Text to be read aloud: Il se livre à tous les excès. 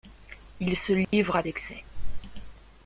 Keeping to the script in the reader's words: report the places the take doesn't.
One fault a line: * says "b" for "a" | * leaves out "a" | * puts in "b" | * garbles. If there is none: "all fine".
* leaves out "tous les"